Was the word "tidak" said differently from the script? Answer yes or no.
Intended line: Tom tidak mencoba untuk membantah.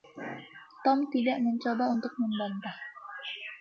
no